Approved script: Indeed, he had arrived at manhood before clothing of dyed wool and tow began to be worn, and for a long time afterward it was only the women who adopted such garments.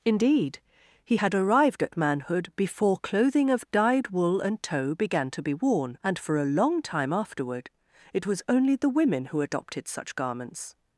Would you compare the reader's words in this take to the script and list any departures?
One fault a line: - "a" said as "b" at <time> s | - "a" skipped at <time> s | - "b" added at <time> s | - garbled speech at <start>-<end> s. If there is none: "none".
none